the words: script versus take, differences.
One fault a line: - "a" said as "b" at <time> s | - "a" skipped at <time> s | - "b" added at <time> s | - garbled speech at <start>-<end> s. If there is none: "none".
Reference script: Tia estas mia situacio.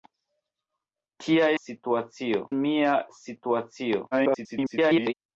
- "estas" said as "situacio" at 1.6 s
- garbled speech at 4.1-5.1 s